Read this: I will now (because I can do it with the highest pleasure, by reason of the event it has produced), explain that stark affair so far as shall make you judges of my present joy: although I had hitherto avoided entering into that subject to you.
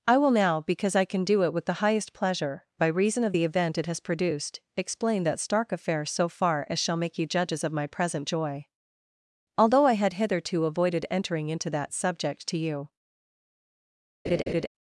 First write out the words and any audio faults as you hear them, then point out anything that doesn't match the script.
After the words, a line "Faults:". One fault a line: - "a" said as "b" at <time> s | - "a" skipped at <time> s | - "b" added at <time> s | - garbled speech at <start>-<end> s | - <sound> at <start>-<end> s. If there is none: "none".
I will now (because I can do it with the highest pleasure, by reason of the event it has produced), explain that stark affair so far as shall make you judges of my present joy: although I had hitherto avoided entering into that subject to you.
Faults:
- laugh at 14.2-14.7 s